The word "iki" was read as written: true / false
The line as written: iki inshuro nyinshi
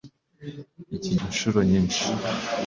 true